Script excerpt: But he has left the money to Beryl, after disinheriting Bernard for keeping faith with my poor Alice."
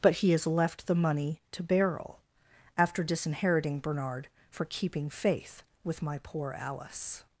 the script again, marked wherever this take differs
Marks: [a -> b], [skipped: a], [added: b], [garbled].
But he has left the money to Beryl, after disinheriting Bernard for keeping faith with my poor Alice."